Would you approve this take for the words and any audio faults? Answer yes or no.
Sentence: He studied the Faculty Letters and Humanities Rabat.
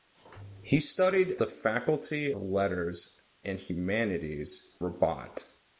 yes